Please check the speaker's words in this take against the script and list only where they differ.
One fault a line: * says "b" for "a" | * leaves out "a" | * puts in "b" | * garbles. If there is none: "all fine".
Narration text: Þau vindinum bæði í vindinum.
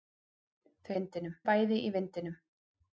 all fine